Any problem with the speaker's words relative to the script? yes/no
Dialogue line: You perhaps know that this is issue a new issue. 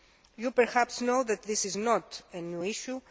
yes